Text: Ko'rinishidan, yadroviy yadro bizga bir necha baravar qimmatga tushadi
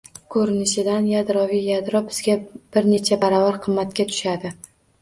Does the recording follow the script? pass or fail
pass